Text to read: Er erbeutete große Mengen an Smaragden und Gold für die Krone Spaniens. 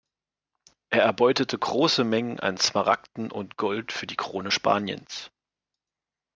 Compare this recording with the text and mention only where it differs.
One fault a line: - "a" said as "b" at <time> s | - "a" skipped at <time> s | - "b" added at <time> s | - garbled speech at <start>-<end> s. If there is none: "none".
none